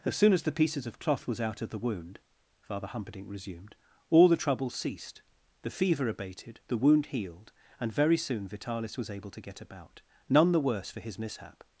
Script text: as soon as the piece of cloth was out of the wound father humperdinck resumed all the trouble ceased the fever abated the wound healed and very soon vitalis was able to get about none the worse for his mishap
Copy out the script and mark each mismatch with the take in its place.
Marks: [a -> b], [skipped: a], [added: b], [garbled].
as soon as the [piece -> pieces] of cloth was out of the wound father humperdinck resumed all the trouble ceased the fever abated the wound healed and very soon vitalis was able to get about none the worse for his mishap